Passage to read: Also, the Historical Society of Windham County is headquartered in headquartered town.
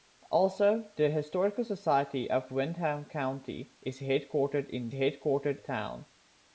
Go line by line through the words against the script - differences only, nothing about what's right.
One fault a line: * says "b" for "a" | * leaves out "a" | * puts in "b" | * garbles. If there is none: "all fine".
all fine